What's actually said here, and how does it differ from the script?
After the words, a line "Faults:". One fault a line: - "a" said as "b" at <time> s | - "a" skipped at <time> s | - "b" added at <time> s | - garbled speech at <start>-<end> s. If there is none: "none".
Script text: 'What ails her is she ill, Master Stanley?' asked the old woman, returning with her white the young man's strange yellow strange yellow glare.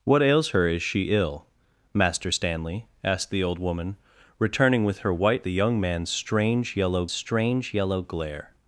'What ails her is she ill, Master Stanley?' asked the old woman, returning with her white the young man's strange yellow strange yellow glare.
Faults:
none